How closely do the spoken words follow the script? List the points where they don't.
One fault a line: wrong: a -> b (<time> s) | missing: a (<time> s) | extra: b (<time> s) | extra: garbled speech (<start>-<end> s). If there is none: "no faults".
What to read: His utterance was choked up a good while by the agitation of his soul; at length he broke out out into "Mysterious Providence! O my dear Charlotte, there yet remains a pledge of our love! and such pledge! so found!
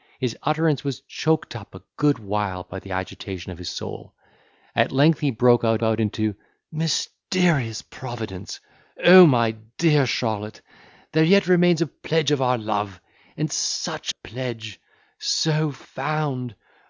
no faults